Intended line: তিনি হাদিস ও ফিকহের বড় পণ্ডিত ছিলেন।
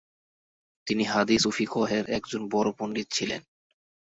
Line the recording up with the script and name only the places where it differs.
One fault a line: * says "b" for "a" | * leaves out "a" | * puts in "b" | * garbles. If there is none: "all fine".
* puts in "একজন"